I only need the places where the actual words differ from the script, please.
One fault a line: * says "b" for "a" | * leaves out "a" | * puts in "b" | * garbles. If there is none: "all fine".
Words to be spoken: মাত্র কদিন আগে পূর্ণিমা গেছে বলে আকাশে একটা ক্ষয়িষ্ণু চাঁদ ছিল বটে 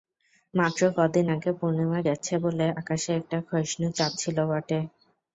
all fine